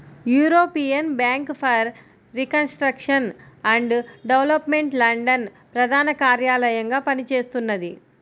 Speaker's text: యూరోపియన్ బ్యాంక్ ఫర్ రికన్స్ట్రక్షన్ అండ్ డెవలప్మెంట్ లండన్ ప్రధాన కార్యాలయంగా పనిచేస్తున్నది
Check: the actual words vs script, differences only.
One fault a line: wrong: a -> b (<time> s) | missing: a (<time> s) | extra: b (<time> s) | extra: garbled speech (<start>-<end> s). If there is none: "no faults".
no faults